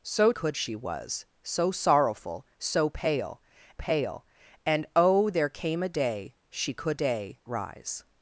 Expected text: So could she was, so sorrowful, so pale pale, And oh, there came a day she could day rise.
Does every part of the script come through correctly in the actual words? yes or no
yes